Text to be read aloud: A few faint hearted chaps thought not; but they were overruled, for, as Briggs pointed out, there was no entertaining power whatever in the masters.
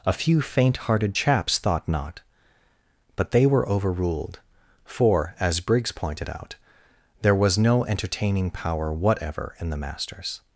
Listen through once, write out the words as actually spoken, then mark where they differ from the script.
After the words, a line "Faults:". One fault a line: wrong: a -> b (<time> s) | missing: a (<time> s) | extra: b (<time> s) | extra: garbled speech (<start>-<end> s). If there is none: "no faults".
A few faint hearted chaps thought not; but they were overruled, for, as Briggs pointed out, there was no entertaining power whatever in the masters.
Faults:
no faults